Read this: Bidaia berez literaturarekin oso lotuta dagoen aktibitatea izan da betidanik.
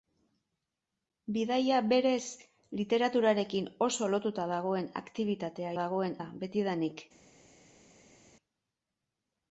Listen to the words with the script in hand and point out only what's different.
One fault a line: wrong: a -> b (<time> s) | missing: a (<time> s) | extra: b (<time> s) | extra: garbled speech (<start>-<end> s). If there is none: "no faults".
wrong: izan -> dagoen (5.8 s)